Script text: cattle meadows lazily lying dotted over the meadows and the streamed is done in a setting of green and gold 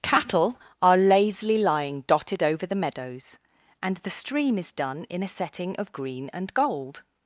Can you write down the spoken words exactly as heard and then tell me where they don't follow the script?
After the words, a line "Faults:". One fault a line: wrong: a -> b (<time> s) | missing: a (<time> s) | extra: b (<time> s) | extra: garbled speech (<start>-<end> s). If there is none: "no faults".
cattle are lazily lying dotted over the meadows and the stream is done in a setting of green and gold
Faults:
wrong: meadows -> are (0.8 s)
wrong: streamed -> stream (4.1 s)